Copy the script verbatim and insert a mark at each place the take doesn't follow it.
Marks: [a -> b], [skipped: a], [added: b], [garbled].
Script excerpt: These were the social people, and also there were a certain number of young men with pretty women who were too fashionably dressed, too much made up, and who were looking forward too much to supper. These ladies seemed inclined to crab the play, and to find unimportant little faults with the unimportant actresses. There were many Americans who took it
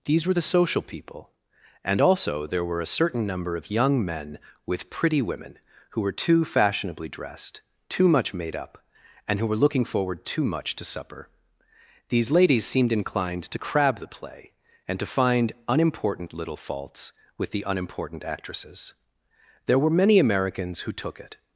These were the social people, and also there were a certain number of young men with pretty women who were too fashionably dressed, too much made up, and who were looking forward too much to supper. These ladies seemed inclined to crab the play, and to find unimportant little faults with the unimportant actresses. There were many Americans who took it